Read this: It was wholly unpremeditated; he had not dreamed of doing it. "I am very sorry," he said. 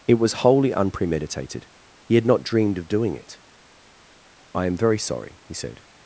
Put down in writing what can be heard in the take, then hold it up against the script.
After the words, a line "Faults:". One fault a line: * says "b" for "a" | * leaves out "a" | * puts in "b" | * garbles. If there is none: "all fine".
It was wholly unpremeditated; he had not dreamed of doing it. "I am very sorry," he said.
Faults:
all fine